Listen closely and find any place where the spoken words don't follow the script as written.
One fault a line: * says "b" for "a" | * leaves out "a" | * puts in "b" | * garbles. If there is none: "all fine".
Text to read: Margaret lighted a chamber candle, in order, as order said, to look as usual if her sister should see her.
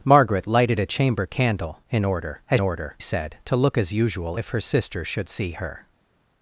all fine